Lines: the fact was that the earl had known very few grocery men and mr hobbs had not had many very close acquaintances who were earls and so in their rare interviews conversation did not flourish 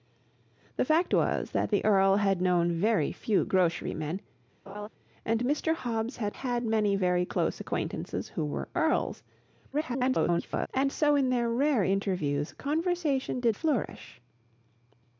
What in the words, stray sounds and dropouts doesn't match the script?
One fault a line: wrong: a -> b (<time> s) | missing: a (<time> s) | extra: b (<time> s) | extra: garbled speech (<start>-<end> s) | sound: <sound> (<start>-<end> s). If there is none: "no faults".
sound: laugh (4.7-4.9 s)
missing: not (6.4 s)
extra: garbled speech (9.7-10.7 s)
missing: not (13.6 s)